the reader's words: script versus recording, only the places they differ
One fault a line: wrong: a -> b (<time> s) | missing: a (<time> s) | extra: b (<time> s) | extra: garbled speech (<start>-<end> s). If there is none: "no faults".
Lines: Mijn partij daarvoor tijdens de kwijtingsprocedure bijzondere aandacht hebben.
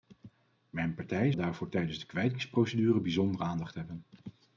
no faults